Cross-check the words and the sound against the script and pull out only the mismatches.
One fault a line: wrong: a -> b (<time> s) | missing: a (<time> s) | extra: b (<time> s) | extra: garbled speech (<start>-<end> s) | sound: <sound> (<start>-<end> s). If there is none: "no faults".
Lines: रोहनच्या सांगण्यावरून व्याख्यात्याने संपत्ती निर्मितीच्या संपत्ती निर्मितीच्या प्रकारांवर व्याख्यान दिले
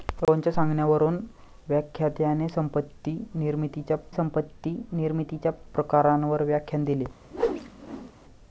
sound: whoosh (7.3-8.1 s)